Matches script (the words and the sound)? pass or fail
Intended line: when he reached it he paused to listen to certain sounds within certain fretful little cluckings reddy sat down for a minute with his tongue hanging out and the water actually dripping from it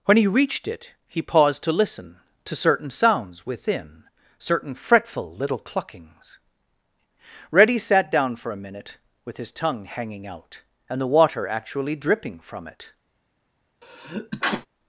fail